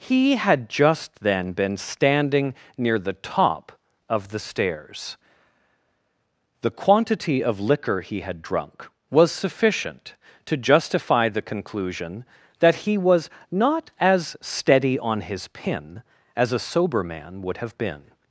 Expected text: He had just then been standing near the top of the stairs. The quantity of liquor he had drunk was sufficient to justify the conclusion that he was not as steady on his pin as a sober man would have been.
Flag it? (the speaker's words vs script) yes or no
no